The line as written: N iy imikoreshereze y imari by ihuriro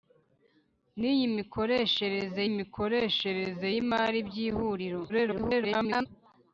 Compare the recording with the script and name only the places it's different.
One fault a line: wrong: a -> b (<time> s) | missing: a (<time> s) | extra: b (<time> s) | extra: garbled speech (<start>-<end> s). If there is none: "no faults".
extra: imikoreshereze (2.5 s)
extra: garbled speech (5.1-6.1 s)